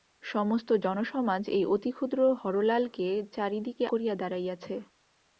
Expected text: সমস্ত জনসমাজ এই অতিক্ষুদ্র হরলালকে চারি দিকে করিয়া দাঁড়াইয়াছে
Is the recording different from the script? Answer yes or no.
no